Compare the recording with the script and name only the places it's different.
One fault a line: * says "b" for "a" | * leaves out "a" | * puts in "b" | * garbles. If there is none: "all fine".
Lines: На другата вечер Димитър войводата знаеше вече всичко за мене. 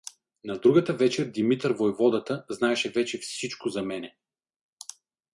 all fine